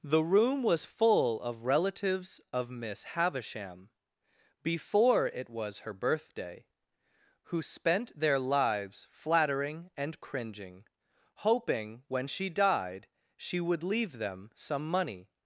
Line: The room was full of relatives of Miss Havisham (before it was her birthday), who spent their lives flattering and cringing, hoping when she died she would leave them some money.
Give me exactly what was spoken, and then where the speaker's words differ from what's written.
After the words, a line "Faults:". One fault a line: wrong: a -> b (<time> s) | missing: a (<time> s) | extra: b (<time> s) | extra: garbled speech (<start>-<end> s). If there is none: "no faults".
The room was full of relatives of Miss Havisham (before it was her birthday), who spent their lives flattering and cringing, hoping when she died she would leave them some money.
Faults:
no faults